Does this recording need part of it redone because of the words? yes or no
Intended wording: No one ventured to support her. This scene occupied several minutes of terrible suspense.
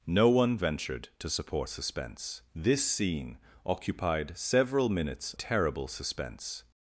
yes